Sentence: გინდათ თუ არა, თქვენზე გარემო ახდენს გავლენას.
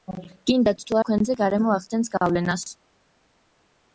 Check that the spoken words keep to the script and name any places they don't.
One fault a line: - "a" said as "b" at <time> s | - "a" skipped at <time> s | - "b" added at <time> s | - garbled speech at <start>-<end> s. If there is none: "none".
- "არა" skipped at 1.0 s